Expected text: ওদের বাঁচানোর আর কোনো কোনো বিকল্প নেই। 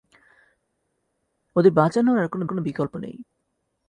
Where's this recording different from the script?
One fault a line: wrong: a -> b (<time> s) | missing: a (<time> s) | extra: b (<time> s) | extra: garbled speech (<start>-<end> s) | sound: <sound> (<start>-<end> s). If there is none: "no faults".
no faults